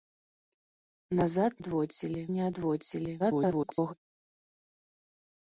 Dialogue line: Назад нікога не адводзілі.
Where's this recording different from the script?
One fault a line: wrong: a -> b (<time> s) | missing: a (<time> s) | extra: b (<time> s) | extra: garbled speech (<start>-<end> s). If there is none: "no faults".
wrong: нікога -> адводзілі (1.6 s)
extra: garbled speech (3.2-3.9 s)